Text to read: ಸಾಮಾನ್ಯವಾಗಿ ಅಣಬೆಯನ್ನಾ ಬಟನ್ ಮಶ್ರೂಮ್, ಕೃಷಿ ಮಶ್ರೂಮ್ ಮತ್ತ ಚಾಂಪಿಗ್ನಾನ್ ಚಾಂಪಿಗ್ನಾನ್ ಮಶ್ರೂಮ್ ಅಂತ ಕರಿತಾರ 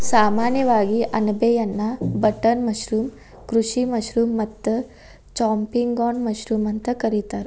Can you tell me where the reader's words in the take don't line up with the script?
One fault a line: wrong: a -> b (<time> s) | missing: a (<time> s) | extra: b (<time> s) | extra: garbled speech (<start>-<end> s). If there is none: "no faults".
missing: ಚಾಂಪಿಗ್ನಾನ್ (6.2 s)